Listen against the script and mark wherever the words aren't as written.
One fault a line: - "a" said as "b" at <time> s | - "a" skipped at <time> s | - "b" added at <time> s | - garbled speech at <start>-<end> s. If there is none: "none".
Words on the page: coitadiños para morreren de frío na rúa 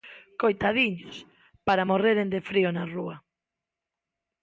none